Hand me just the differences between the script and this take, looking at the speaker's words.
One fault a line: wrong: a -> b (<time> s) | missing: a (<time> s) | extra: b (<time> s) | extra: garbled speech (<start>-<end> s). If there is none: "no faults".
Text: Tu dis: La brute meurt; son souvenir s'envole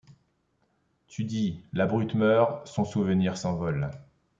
no faults